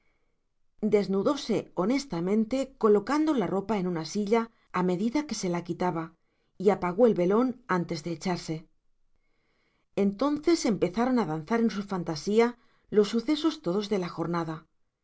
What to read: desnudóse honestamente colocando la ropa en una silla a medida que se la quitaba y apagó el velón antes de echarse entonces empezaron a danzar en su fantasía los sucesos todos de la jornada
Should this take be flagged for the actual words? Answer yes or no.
no